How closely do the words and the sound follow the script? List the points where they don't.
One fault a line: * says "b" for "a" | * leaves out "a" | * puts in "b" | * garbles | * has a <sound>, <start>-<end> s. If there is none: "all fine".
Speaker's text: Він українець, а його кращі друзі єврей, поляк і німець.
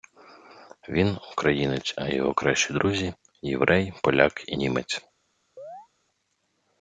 * has a chirp, 5.6-5.9 s